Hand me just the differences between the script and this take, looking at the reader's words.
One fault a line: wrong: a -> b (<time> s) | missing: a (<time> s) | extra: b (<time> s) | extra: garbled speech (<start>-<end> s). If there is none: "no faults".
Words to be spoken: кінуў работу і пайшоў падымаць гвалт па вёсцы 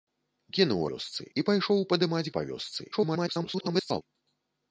wrong: работу -> вёсцы (0.9 s)
missing: гвалт (2.3 s)
extra: garbled speech (2.9-4.0 s)